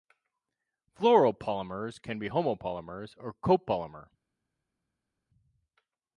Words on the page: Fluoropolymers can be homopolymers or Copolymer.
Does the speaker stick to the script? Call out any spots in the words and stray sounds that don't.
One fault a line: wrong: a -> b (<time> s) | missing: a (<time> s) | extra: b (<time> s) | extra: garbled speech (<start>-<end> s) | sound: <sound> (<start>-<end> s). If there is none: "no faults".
no faults